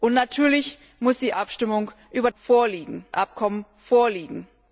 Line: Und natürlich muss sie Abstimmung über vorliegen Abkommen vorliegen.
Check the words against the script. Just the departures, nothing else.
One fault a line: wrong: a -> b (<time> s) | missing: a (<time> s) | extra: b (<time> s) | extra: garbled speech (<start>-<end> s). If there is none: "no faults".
no faults